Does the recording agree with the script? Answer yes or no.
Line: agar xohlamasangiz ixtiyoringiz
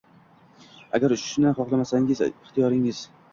no